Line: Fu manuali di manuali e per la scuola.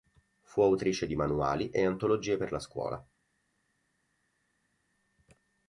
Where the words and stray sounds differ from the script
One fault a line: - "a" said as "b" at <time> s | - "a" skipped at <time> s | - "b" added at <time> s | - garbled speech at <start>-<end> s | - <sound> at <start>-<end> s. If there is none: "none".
- "manuali" said as "autrice" at 0.6 s
- "antologie" added at 1.9 s